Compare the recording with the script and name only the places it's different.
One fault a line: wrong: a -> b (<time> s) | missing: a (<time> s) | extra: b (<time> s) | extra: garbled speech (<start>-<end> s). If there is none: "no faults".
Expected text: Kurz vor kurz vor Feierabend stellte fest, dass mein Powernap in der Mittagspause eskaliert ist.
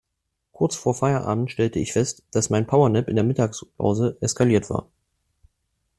missing: kurz vor (0.9 s)
extra: ich (1.8 s)
wrong: ist -> war (4.7 s)